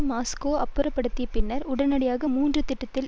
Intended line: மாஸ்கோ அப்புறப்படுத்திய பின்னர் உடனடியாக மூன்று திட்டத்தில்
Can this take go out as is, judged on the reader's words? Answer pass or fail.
pass